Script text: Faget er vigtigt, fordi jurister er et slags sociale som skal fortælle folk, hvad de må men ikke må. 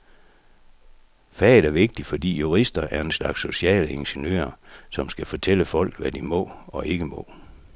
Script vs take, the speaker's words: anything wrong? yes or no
yes